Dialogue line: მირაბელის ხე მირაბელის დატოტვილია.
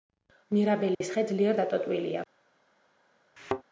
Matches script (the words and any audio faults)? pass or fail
fail